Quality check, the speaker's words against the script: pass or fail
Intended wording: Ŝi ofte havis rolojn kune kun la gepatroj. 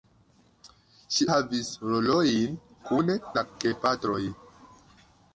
fail